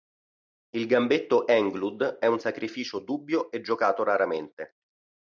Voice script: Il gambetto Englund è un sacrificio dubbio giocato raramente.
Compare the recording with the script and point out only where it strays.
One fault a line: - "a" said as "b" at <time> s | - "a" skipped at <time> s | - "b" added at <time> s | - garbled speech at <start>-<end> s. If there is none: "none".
- "e" added at 3.5 s